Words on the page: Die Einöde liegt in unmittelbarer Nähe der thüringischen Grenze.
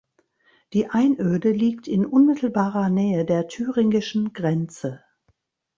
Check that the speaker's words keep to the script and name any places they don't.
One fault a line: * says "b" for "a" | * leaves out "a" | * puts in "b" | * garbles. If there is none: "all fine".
all fine